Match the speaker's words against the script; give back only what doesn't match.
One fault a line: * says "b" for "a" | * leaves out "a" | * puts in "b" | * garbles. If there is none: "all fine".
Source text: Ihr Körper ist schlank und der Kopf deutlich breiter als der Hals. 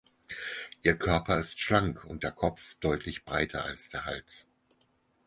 all fine